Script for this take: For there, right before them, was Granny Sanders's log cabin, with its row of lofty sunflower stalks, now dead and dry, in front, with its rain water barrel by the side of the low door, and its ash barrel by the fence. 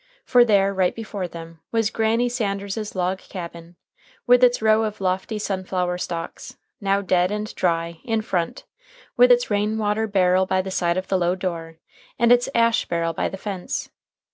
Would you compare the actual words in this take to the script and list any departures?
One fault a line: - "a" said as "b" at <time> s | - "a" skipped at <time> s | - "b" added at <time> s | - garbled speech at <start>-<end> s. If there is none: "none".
none